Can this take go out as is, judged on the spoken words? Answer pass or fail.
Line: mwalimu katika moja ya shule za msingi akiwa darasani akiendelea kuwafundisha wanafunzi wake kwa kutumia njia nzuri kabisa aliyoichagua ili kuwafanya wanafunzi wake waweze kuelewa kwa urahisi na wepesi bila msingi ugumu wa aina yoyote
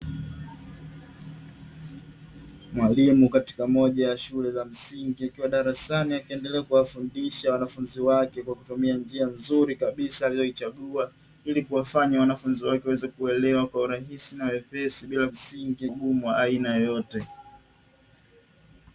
pass